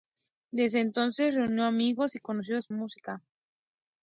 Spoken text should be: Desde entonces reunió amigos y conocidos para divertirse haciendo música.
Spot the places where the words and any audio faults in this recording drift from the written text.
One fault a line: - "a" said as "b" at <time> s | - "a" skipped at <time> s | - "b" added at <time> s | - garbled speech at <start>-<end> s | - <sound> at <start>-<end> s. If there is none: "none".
- "para divertirse haciendo" skipped at 2.7 s